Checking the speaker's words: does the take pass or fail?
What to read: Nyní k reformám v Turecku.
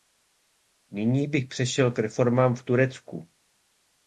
fail